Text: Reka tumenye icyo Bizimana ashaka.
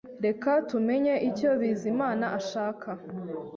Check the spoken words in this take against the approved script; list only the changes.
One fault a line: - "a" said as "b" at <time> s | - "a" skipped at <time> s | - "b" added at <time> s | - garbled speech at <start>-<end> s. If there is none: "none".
none